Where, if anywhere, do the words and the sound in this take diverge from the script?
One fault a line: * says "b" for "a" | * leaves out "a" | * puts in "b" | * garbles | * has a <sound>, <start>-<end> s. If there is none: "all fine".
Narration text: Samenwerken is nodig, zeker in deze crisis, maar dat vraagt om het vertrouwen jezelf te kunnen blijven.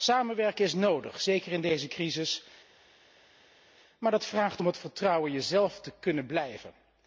all fine